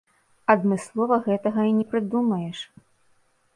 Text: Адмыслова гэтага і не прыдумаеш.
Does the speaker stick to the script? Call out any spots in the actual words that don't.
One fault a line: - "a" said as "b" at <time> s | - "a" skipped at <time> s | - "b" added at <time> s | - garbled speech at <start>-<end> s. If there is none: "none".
none